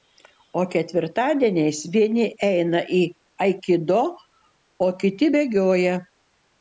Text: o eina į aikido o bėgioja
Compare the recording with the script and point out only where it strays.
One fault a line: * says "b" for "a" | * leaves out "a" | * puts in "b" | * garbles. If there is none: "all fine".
* puts in "ketvirtadieniais vieni"
* puts in "kiti"